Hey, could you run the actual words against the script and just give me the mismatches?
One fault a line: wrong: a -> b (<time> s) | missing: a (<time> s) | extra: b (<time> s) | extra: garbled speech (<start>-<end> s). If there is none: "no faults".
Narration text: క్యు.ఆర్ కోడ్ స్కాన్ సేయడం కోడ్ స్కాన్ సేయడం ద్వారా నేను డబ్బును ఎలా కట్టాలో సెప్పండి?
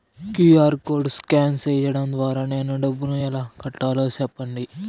missing: కోడ్ స్కాన్ సేయడం (2.1 s)